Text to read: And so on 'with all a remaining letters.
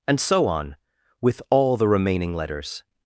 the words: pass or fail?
fail